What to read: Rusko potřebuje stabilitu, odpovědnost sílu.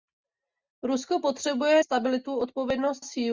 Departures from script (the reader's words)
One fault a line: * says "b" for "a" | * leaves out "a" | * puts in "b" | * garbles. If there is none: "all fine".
all fine